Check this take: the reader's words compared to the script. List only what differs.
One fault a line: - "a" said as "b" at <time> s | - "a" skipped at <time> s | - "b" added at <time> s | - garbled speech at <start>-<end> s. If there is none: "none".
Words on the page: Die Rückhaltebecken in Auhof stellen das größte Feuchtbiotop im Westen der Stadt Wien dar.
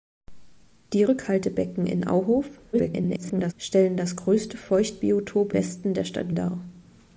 - garbled speech at 2.7-3.5 s
- "im" skipped at 5.5 s
- "Wien" skipped at 6.4 s